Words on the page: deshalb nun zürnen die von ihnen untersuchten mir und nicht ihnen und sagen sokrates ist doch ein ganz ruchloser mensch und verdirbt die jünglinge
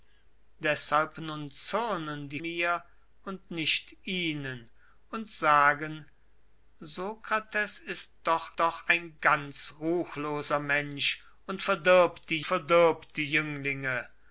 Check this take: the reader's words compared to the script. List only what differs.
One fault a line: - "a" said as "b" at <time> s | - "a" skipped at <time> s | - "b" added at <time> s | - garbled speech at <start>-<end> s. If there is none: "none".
- "von ihnen untersuchten" skipped at 2.4 s
- "doch" added at 8.6 s
- "verdirbt die" added at 12.4 s